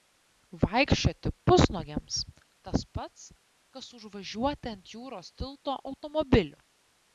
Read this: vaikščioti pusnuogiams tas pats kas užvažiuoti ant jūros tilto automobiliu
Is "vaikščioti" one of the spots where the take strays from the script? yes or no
no